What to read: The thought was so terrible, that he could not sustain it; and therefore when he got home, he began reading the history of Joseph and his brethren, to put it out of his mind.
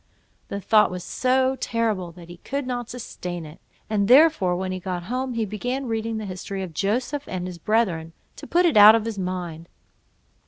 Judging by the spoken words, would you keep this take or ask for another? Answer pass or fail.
pass